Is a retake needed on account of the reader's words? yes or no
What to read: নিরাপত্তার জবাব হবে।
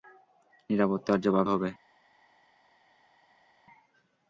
no